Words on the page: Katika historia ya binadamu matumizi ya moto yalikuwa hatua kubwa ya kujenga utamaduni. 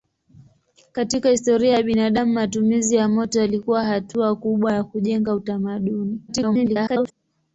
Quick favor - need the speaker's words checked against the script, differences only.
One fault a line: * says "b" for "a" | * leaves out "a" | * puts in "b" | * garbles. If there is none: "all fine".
* garbles